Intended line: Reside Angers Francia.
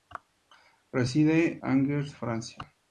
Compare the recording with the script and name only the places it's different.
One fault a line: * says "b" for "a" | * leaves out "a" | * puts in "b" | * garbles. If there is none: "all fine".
all fine